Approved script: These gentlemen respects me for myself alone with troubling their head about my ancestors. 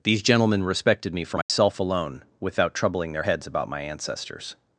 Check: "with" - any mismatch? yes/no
yes